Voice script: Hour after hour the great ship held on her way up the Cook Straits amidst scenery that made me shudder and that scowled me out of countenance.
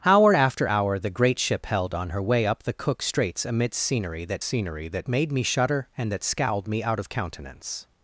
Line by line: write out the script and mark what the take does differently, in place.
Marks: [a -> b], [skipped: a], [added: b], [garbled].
Hour after hour the great ship held on her way up the Cook Straits amidst scenery that [added: scenery that] made me shudder and that scowled me out of countenance.